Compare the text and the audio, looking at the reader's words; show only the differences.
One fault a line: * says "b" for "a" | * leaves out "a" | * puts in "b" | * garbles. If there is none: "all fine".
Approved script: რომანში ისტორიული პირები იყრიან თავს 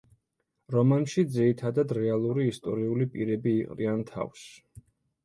* puts in "ძირითადად რეალური"